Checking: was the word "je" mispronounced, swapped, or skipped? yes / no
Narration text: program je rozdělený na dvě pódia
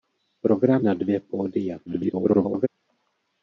yes